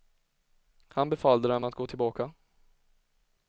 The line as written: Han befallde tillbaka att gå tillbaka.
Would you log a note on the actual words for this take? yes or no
yes